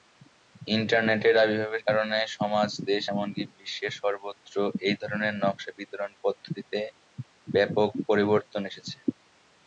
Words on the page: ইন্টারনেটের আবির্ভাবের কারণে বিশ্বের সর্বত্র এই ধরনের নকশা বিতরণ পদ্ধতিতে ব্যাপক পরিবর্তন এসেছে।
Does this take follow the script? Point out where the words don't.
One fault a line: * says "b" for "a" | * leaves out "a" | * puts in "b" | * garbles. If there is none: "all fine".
* puts in "সমাজ দেশ এমনকি"